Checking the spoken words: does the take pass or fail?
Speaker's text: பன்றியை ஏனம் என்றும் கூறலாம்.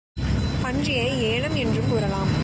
pass